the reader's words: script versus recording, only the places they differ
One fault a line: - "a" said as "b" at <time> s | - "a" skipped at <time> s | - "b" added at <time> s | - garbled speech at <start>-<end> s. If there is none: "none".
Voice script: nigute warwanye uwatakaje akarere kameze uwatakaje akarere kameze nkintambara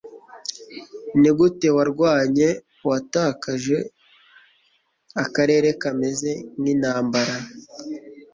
- "uwatakaje akarere kameze" skipped at 6.3 s